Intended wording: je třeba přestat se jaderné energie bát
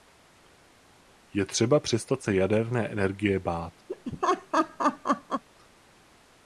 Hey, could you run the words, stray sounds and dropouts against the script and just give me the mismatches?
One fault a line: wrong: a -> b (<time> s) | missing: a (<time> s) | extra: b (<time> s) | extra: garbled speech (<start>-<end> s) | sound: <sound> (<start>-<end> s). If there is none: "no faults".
sound: laugh (3.9-5.4 s)